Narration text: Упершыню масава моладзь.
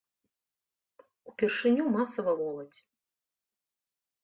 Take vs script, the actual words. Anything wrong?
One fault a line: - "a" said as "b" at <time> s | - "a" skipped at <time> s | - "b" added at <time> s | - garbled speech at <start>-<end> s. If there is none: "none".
none